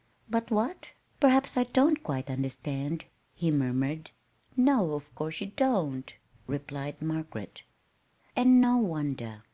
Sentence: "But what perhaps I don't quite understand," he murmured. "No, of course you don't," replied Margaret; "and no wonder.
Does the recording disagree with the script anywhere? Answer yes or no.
no